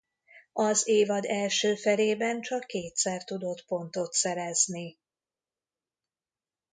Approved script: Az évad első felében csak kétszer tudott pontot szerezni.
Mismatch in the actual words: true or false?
false